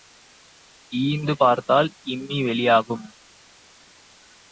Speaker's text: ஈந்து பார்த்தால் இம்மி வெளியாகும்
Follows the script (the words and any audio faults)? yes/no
yes